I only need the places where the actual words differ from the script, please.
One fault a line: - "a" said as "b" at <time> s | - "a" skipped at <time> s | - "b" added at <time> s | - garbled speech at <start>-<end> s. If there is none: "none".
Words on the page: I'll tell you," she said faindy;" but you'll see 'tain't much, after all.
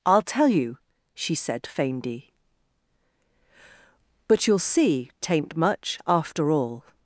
none